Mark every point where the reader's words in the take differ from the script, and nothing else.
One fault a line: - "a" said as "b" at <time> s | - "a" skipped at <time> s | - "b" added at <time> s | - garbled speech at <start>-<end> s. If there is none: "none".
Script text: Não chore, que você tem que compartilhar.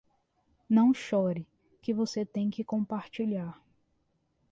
none